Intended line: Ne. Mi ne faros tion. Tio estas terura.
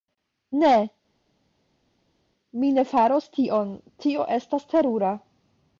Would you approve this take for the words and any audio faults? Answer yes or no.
yes